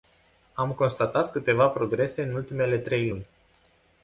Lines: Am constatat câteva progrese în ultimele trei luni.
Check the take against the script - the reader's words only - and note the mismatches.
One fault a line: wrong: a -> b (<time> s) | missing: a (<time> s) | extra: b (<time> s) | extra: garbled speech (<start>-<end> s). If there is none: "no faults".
no faults